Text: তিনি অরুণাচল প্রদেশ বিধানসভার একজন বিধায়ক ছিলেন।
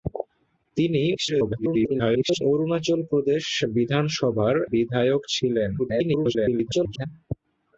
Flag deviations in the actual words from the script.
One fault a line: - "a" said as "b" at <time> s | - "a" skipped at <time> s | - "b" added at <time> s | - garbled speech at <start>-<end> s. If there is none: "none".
- garbled speech at 1.1-2.4 s
- "একজন" skipped at 4.5 s
- garbled speech at 5.8-7.1 s